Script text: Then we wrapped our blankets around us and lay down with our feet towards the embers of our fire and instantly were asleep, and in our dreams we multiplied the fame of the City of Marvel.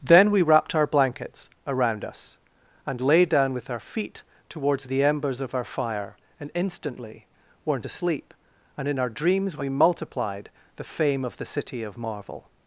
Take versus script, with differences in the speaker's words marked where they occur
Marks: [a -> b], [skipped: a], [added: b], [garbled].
Then we wrapped our blankets around us and lay down with our feet towards the embers of our fire and instantly [were -> weren't] asleep, and in our dreams we multiplied the fame of the City of Marvel.